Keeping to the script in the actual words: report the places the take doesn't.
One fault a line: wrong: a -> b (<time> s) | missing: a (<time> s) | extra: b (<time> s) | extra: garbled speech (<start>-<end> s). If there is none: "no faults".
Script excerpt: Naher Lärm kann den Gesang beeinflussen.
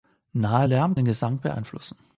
missing: kann (1.0 s)